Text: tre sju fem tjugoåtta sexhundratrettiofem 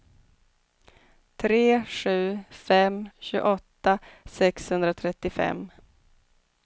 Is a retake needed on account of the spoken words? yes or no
no